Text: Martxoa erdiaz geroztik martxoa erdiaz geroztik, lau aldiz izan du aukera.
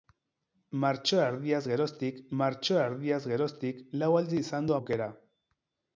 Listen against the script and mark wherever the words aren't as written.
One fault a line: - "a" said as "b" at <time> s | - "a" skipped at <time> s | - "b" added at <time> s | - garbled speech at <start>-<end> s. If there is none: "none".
none